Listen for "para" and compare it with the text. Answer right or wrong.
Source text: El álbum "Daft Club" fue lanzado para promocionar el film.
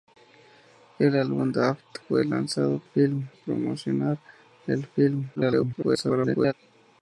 wrong